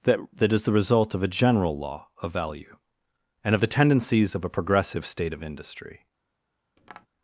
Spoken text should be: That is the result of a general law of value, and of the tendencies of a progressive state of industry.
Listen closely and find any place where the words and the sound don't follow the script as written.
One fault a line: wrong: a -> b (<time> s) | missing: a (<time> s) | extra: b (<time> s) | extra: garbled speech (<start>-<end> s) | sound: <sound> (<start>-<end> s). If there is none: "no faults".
extra: that (0.3 s)
sound: tap (6.8-7.1 s)